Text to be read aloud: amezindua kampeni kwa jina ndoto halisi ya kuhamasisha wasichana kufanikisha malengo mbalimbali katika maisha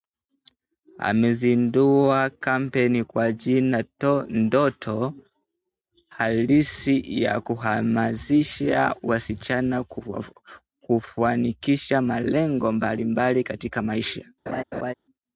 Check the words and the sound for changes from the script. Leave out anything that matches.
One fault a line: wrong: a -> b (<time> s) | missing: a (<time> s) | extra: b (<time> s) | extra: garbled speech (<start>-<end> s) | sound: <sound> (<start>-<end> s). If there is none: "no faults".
sound: laugh (14.5-14.9 s)